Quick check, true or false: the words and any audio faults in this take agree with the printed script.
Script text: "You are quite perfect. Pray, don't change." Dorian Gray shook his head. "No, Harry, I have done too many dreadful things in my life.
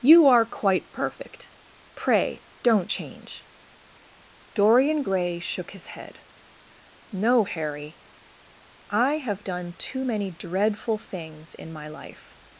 true